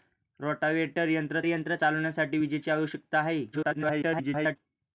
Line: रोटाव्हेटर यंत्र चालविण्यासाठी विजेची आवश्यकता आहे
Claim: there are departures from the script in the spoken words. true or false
true